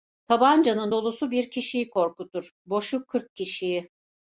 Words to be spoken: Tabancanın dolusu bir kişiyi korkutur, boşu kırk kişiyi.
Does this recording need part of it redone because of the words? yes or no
no